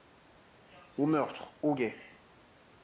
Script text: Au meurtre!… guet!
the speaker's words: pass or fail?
fail